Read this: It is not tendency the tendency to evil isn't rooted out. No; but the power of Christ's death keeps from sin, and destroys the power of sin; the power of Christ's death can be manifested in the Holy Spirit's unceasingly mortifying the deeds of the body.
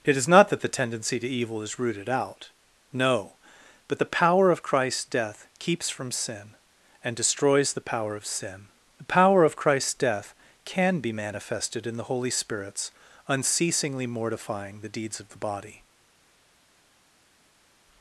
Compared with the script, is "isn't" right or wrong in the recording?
wrong